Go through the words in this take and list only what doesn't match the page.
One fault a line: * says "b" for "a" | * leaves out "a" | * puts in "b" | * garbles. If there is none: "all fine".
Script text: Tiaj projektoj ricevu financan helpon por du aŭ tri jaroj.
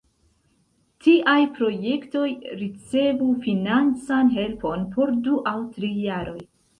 all fine